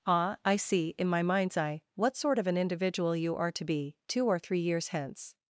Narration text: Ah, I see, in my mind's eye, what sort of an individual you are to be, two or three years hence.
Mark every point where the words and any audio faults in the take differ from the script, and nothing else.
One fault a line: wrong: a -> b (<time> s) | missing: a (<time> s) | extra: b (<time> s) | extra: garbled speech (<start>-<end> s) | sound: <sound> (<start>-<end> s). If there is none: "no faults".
no faults